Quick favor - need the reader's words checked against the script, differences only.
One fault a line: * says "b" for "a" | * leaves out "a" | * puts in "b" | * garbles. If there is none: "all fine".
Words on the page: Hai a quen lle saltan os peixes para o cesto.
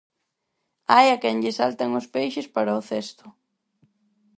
all fine